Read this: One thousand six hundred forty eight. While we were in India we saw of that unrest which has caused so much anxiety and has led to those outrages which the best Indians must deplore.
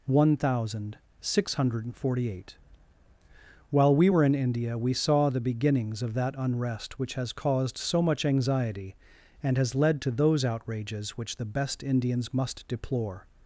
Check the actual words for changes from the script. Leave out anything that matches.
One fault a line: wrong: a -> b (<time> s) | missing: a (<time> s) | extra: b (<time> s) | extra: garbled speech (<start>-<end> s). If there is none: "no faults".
extra: the beginnings (5.3 s)